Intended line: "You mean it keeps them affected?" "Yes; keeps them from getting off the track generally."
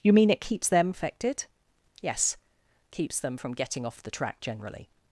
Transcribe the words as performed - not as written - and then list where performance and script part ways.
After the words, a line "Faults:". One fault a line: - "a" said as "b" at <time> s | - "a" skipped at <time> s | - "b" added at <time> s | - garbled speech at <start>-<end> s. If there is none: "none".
"You mean it keeps them affected?" "Yes; keeps them from getting off the track generally."
Faults:
none